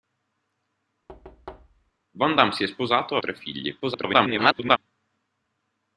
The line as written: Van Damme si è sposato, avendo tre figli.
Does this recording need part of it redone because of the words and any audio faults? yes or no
yes